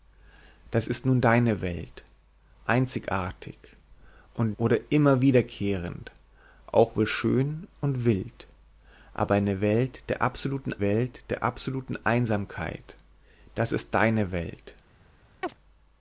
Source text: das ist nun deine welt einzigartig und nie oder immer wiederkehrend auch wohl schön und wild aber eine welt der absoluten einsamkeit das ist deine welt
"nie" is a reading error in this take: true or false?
true